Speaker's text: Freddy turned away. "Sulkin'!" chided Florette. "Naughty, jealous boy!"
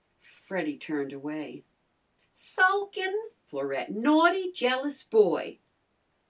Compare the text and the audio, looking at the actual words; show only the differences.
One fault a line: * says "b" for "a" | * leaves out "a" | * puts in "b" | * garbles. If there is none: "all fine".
* leaves out "chided"